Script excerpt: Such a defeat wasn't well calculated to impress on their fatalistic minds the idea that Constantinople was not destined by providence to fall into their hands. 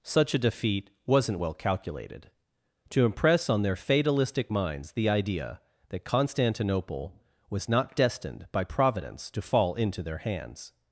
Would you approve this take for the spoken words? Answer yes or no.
yes